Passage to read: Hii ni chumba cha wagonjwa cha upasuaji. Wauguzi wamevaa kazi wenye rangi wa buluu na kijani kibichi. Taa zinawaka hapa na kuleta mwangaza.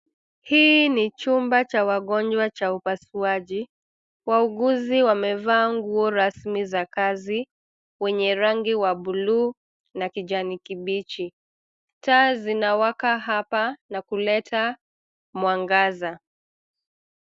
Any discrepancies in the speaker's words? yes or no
yes